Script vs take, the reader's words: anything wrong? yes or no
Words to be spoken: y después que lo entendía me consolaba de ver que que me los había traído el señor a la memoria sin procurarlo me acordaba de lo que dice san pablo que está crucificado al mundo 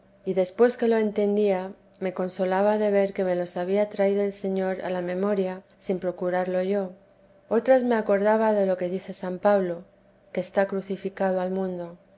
yes